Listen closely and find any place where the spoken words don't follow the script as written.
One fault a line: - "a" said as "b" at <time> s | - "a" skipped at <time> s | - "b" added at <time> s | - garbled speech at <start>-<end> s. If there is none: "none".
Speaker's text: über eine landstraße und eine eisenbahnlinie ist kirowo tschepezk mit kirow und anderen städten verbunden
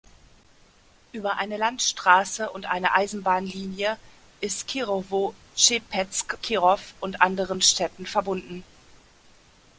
- "mit" skipped at 6.4 s